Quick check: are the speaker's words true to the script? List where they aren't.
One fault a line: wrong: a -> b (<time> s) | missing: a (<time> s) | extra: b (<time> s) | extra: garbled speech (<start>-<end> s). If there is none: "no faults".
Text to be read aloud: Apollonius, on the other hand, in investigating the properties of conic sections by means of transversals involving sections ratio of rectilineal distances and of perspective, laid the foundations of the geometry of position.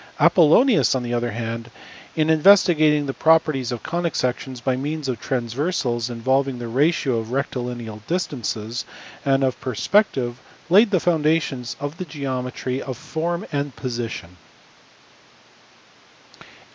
wrong: sections -> the (6.6 s)
extra: form and (12.9 s)